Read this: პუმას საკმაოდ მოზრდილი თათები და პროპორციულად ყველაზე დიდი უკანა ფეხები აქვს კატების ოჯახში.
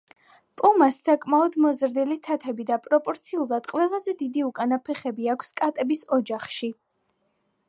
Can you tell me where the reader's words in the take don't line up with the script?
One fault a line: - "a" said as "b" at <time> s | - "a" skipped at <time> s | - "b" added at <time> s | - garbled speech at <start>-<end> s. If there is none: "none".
none